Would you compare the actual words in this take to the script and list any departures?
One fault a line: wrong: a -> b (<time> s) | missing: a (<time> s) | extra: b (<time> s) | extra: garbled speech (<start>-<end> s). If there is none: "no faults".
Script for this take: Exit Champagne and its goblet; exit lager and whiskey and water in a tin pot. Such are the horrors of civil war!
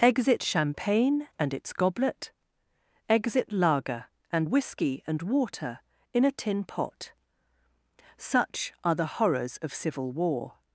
no faults